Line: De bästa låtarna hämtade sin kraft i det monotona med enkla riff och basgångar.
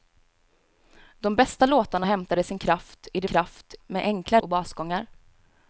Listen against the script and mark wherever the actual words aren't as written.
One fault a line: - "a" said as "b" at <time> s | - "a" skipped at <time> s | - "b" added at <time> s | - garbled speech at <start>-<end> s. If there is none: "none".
- "monotona" said as "kraft" at 3.3 s
- "riff" skipped at 4.4 s